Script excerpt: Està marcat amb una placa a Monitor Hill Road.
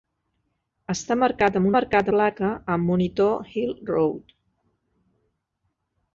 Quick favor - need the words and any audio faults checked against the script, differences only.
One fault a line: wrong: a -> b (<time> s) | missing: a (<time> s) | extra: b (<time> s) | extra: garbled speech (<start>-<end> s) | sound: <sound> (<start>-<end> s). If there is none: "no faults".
wrong: una -> marcat (1.8 s)